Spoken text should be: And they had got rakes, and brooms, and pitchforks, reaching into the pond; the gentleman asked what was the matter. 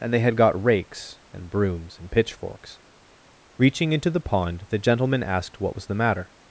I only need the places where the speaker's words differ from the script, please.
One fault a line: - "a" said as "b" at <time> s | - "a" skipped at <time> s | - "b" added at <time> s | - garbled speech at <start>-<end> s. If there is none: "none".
none